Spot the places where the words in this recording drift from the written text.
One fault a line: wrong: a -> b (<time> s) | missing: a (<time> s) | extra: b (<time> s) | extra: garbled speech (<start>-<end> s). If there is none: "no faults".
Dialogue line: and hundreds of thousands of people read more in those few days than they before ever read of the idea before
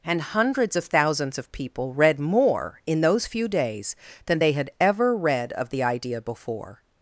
wrong: before -> had (4.5 s)